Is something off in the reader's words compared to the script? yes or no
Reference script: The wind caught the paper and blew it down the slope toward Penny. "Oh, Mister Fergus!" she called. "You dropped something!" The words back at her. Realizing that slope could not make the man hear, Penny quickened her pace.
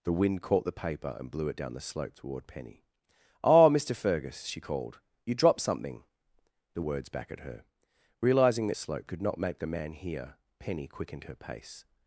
no